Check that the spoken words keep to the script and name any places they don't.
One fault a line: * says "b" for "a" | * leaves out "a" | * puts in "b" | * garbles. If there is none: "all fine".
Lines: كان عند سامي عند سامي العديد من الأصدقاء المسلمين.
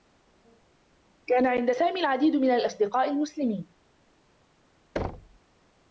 * leaves out "عند سامي"